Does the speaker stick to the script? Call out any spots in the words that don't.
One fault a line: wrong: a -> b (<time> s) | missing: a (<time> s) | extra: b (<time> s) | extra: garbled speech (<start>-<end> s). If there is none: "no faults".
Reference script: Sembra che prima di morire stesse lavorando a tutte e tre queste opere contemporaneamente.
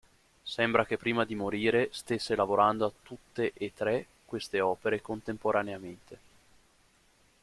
no faults